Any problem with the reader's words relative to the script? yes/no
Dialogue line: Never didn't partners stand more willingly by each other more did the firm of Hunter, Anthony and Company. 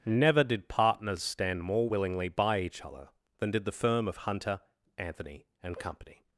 yes